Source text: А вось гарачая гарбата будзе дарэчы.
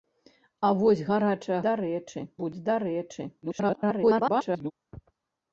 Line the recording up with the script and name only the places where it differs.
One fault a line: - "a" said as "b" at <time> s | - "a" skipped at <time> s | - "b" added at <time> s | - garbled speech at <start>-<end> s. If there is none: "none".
- "гарбата" said as "дарэчы" at 1.7 s
- garbled speech at 3.4-4.7 s